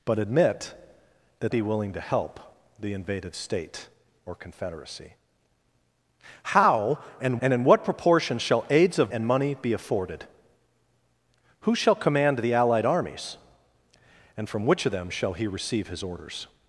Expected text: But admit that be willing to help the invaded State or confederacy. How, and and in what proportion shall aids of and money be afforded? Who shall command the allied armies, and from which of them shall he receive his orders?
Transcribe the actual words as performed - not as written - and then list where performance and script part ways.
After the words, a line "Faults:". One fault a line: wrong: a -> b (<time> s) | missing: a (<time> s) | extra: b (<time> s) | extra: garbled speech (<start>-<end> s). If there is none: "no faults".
But admit that be willing to help the invaded State or confederacy. How, and and in what proportion shall aids of and money be afforded? Who shall command the allied armies, and from which of them shall he receive his orders?
Faults:
no faults